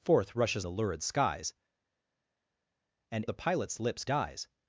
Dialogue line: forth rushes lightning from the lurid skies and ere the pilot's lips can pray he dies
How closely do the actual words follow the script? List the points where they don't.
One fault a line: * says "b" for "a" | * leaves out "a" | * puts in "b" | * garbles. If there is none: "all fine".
* leaves out "lightning from"
* leaves out "ere"
* leaves out "can pray he"